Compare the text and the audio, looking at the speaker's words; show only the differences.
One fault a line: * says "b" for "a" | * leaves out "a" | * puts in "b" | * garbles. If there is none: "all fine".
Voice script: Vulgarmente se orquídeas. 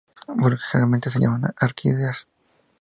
* puts in "llaman"